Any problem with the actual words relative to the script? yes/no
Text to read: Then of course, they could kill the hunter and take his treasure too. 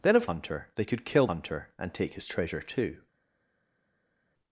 yes